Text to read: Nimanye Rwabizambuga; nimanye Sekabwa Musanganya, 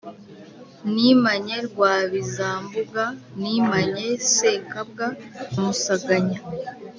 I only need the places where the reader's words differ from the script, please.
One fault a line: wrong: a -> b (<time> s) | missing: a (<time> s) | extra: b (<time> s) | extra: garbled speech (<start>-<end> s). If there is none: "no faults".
no faults